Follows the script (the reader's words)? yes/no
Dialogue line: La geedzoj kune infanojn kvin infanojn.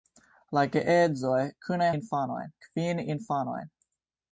yes